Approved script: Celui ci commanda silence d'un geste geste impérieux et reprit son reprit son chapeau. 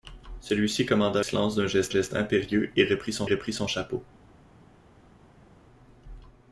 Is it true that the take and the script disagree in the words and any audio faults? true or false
false